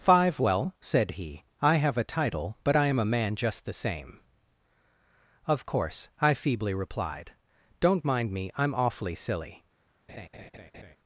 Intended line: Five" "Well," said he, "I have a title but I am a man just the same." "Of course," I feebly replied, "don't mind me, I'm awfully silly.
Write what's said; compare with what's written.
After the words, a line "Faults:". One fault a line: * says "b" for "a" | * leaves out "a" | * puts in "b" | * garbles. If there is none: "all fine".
Five" "Well," said he, "I have a title but I am a man just the same." "Of course," I feebly replied, "don't mind me, I'm awfully silly.
Faults:
all fine